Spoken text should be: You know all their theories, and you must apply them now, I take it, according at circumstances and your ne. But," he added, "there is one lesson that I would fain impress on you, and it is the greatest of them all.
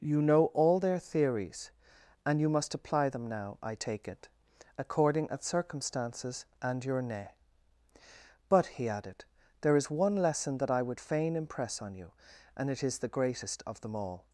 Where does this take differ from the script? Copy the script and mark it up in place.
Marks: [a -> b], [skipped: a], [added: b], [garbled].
You know all their theories, and you must apply them now, I take it, according at circumstances and your ne. But," he added, "there is one lesson that I would fain impress on you, and it is the greatest of them all.